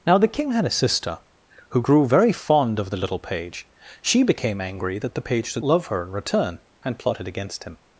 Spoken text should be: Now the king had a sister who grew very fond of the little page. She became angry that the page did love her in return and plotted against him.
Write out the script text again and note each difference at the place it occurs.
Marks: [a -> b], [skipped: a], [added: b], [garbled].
Now the king had a sister who grew very fond of the little page. She became angry that the page did love her in return and plotted against him.